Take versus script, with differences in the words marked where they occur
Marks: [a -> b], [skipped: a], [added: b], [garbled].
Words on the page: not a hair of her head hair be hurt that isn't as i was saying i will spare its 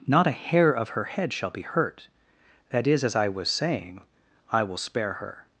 not a hair of her head [hair -> shall] be hurt that [isn't -> is] as i was saying i will spare [its -> her]